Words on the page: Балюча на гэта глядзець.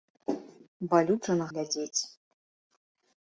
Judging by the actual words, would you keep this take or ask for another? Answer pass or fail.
fail